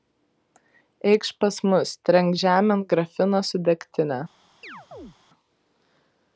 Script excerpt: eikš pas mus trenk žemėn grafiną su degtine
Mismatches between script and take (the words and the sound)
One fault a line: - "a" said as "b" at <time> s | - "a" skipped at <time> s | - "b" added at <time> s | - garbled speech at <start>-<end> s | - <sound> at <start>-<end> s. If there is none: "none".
- chirp at 4.6-5.2 s